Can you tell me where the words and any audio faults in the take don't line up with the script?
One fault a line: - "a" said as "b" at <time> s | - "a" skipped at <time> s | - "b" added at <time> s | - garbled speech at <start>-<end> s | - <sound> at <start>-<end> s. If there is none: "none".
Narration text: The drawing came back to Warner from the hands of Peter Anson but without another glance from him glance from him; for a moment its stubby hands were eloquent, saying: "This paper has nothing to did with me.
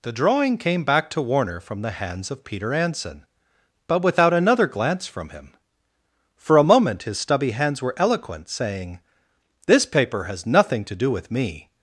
- "glance from him" skipped at 5.5 s
- "its" said as "his" at 7.0 s
- "did" said as "do" at 10.9 s